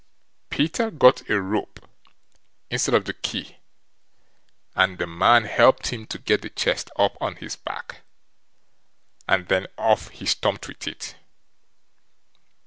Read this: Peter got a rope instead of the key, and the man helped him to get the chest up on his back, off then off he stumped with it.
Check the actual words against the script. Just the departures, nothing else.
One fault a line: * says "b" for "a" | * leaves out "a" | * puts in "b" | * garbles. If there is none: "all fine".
* says "and" for "off"